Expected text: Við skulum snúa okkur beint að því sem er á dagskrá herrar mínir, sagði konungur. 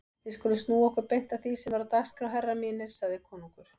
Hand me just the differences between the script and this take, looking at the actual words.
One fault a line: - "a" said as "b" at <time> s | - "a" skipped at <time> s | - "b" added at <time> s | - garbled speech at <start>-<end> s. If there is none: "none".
none